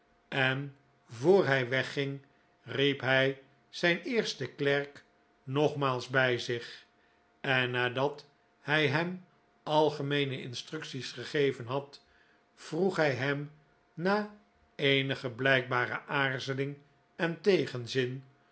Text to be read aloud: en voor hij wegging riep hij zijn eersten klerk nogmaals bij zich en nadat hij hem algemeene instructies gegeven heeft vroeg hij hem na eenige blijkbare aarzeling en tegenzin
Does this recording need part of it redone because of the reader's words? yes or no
yes